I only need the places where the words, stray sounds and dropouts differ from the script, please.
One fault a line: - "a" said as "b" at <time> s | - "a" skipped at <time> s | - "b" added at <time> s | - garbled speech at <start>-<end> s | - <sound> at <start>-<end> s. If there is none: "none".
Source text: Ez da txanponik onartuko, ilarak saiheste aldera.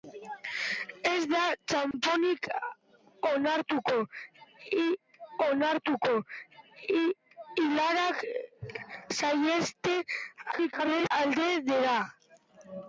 - dropout at 1.9-1.9 s
- "onartuko" added at 5.5 s
- garbled speech at 10.5-11.1 s